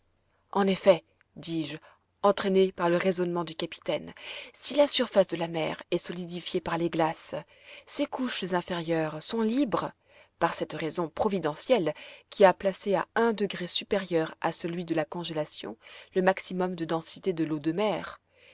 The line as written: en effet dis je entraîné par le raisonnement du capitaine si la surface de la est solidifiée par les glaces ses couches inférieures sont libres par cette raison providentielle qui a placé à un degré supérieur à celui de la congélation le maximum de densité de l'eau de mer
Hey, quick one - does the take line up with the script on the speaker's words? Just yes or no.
no